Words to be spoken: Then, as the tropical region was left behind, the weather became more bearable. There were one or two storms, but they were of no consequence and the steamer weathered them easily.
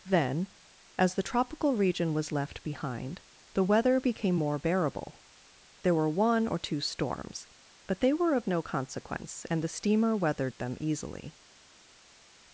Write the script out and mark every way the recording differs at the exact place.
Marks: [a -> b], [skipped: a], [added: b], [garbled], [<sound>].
Then, as the tropical region was left behind, the weather became more bearable. There were one or two storms, but they were of no consequence and the steamer weathered them easily.